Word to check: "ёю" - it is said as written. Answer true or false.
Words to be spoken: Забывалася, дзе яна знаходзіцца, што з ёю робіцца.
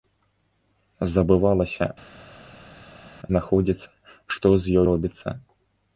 false